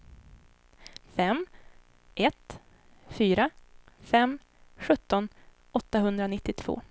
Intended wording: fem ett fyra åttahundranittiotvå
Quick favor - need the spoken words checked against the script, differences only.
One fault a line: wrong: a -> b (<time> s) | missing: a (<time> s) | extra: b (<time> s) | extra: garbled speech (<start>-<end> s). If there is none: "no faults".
extra: fem sjutton (4.0 s)